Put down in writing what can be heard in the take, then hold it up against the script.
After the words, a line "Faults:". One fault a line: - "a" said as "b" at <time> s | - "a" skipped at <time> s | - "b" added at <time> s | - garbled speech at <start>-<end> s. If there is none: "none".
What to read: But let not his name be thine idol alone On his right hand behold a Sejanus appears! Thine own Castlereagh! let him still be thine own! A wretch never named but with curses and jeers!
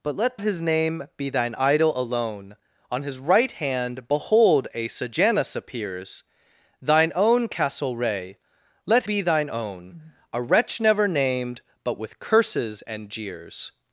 But let his name be thine idol alone On his right hand behold a Sejanus appears! Thine own Castlereagh! let be thine own! A wretch never named but with curses and jeers!
Faults:
- "not" skipped at 0.4 s
- "him still" skipped at 9.1 s